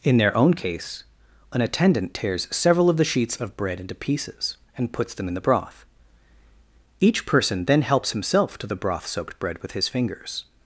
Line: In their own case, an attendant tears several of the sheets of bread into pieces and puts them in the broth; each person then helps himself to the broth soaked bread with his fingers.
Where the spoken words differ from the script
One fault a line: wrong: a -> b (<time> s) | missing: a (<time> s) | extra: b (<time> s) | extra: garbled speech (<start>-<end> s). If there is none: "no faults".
no faults